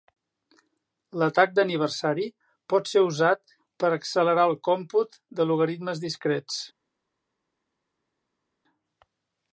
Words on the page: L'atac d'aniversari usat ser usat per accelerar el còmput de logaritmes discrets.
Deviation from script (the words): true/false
true